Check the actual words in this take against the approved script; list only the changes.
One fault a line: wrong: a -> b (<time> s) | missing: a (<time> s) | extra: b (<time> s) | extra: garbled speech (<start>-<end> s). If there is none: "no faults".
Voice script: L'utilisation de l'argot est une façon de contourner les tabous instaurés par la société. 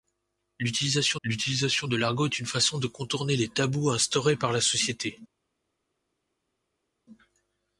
extra: l'utilisation (1.2 s)